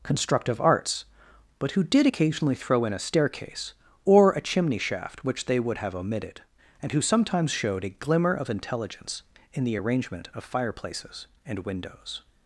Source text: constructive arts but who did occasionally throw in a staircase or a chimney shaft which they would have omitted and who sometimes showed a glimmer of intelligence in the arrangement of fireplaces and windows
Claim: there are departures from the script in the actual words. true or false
false